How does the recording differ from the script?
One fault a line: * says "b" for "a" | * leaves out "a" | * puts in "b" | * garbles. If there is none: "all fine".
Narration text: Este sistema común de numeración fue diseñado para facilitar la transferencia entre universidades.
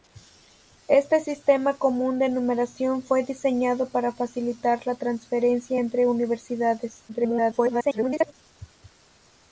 * garbles